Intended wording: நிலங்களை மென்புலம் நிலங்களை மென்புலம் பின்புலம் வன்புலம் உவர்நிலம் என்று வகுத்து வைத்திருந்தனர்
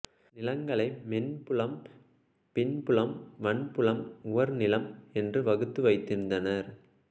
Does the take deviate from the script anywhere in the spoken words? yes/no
yes